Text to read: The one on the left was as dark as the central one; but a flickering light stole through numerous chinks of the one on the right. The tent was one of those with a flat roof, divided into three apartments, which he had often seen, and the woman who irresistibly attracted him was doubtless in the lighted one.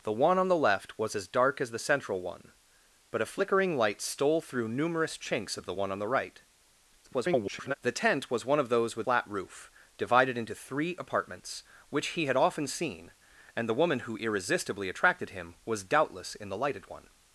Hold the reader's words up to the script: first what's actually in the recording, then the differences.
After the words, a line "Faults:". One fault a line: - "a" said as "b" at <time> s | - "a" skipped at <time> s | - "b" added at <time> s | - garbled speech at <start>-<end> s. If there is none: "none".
The one on the left was as dark as the central one; but a flickering light stole through numerous chinks of the one on the right. [garbled] The tent was one of those with flat roof, divided into three apartments, which he had often seen, and the woman who irresistibly attracted him was doubtless in the lighted one.
Faults:
- garbled speech at 7.0-7.7 s
- "a" skipped at 9.1 s